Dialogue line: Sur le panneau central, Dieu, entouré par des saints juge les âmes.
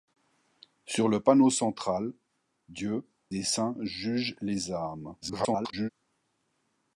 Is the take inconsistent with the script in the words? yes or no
yes